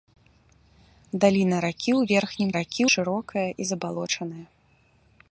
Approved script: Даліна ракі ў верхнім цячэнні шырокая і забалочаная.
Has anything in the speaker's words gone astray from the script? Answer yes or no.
yes